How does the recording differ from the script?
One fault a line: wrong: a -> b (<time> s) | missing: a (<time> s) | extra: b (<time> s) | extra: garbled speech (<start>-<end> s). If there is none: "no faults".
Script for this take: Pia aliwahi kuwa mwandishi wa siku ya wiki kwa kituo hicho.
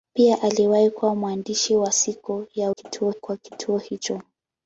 wrong: wiki -> kituo (2.7 s)